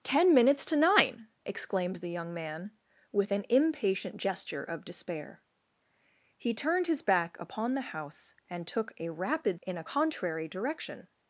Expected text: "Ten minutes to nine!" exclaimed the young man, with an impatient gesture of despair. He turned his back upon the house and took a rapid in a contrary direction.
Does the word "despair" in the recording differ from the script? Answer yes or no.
no